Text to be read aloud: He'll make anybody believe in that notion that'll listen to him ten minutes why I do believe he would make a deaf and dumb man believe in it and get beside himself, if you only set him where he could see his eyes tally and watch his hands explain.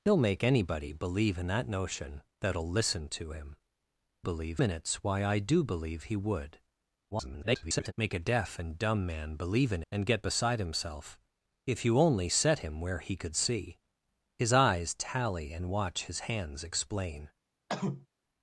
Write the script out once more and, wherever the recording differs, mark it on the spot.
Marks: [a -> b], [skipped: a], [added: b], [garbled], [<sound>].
He'll make anybody believe in that notion that'll listen to him [ten -> believe] minutes why I do believe he would [garbled] make a deaf and dumb man believe in [skipped: it] and get beside himself, if you only set him where he could see his eyes tally and watch his hands explain. [cough]